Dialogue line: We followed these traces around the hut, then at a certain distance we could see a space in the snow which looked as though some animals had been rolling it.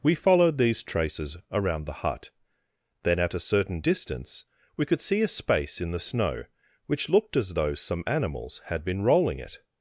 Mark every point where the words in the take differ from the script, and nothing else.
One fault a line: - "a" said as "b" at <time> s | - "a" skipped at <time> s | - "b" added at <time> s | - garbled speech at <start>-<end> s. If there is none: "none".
none